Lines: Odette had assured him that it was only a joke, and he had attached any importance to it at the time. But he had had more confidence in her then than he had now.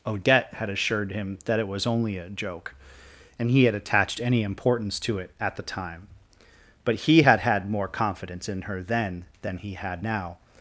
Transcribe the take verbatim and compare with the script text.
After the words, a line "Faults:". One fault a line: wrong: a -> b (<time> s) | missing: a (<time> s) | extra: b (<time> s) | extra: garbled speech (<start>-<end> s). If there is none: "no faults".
Odette had assured him that it was only a joke, and he had attached any importance to it at the time. But he had had more confidence in her then than he had now.
Faults:
no faults